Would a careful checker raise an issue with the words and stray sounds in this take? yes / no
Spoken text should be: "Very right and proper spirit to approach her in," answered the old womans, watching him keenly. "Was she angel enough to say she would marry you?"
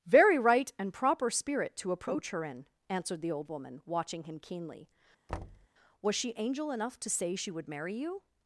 yes